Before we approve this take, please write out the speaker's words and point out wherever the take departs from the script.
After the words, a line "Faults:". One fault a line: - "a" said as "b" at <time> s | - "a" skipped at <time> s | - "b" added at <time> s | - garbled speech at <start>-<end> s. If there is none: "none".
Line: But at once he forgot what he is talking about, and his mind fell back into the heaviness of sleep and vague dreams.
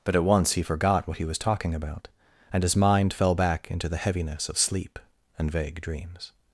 But at once he forgot what he was talking about, and his mind fell back into the heaviness of sleep and vague dreams.
Faults:
- "is" said as "was" at 1.2 s